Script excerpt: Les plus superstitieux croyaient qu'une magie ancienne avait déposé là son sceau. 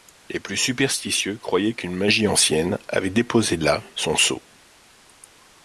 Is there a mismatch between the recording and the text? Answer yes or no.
no